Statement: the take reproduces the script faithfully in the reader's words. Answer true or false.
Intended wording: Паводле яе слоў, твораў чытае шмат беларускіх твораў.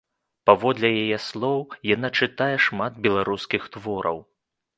false